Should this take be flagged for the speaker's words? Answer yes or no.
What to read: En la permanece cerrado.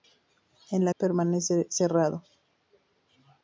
no